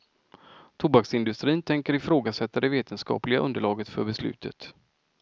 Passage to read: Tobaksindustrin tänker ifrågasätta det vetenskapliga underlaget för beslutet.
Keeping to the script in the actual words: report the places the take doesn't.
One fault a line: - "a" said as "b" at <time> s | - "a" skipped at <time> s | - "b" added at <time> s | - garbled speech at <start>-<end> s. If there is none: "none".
none